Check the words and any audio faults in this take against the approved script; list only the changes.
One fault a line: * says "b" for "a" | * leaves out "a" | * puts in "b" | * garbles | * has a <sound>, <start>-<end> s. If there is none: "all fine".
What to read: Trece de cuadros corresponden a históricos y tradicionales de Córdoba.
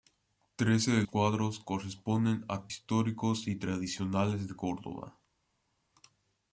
all fine